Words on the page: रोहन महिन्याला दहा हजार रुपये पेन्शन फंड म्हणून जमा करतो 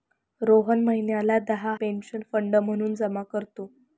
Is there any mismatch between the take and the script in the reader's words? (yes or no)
yes